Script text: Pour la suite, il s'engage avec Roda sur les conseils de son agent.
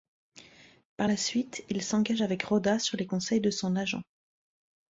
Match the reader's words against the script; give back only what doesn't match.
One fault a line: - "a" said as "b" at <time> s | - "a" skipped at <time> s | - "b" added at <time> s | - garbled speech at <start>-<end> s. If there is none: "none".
- "Pour" said as "Par" at 1.0 s